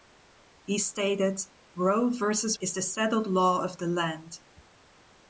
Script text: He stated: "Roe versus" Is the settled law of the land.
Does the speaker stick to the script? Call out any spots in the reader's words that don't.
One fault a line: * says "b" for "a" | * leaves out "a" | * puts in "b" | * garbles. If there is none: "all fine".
all fine